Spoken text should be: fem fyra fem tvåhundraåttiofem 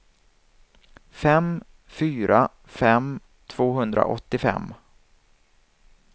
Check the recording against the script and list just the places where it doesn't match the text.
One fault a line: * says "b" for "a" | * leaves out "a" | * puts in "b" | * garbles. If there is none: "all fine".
all fine